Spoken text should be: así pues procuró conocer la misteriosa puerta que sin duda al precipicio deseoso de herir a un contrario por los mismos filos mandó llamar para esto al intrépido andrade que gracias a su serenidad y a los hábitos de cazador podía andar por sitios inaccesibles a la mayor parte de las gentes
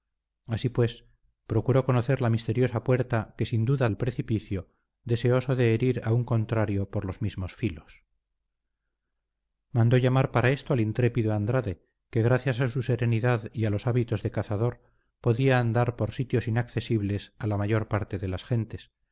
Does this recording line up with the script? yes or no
yes